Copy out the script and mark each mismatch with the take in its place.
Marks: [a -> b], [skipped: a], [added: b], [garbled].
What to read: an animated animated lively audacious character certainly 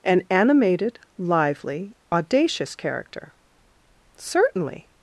an animated [skipped: animated] lively audacious character certainly